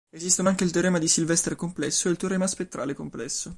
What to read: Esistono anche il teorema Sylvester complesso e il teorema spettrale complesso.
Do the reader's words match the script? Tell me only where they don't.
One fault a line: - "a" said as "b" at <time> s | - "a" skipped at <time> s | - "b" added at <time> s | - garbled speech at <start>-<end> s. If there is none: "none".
- "di" added at 1.0 s